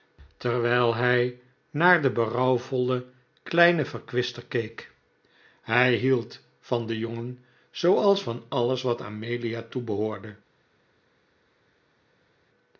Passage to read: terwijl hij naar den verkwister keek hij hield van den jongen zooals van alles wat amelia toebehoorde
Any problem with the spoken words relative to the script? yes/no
yes